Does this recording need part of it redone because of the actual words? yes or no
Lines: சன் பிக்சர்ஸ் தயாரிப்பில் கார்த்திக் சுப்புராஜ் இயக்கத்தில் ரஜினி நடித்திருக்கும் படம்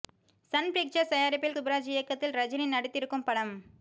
yes